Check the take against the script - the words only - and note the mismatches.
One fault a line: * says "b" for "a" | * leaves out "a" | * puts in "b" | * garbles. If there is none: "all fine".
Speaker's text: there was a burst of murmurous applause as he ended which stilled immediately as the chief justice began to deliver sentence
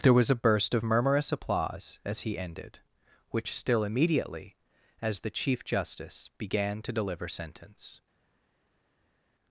* says "still" for "stilled"